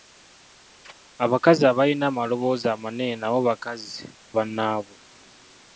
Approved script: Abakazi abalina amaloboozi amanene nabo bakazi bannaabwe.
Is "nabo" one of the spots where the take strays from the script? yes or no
no